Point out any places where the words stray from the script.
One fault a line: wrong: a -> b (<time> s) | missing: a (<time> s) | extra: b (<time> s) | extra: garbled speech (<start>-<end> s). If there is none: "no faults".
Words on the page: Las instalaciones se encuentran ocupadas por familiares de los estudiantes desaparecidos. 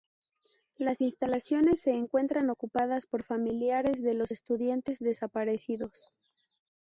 no faults